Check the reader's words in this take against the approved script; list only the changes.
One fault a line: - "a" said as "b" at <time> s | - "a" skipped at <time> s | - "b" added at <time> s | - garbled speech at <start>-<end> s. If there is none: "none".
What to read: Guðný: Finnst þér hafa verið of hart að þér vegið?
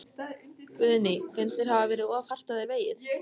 none